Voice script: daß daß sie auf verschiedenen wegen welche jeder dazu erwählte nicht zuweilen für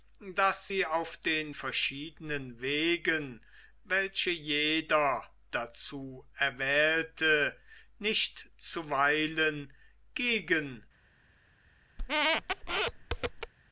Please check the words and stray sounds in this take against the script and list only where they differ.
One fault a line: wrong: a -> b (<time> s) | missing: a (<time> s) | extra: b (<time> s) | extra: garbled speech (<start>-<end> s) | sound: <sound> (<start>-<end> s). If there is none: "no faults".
missing: daß (0.7 s)
extra: den (1.2 s)
wrong: für -> gegen (10.1 s)
sound: squeak (12.0-13.5 s)